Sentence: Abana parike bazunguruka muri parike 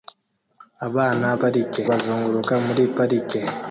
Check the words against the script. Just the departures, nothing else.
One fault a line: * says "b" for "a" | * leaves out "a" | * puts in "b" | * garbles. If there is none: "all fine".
all fine